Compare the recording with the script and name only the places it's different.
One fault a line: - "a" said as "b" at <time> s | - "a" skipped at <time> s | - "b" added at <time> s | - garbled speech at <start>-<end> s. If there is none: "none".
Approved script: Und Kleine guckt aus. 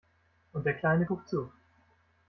- "der" added at 0.7 s
- "aus" said as "zu" at 1.3 s